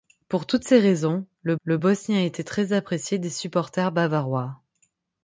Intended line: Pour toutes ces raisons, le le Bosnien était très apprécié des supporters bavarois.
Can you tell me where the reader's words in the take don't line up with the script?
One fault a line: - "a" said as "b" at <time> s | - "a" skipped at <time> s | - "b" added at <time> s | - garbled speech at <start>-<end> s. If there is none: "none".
none